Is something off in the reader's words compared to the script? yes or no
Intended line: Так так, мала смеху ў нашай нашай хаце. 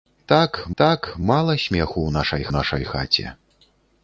no